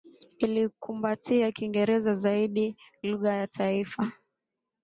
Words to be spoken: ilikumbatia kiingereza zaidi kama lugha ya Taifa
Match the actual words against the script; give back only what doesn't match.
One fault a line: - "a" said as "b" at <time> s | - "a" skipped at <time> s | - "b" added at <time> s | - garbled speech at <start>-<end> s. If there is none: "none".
- "kama" skipped at 2.8 s